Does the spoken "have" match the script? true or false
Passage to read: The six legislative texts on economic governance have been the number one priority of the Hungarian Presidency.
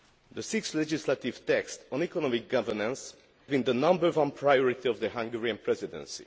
false